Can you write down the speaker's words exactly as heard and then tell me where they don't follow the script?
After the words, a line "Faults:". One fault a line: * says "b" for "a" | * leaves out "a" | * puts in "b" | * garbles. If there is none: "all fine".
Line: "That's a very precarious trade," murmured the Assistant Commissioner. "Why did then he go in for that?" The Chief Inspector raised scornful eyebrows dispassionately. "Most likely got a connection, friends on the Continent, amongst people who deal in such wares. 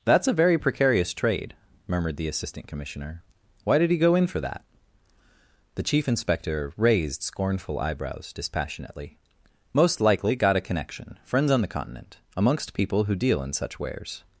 "That's a very precarious trade," murmured the Assistant Commissioner. "Why did he go in for that?" The Chief Inspector raised scornful eyebrows dispassionately. "Most likely got a connection, friends on the Continent, amongst people who deal in such wares.
Faults:
* leaves out "then"